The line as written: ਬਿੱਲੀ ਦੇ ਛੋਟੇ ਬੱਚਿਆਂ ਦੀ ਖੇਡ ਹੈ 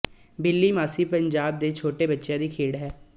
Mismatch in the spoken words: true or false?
true